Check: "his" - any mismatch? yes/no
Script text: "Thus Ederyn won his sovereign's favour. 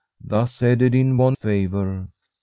yes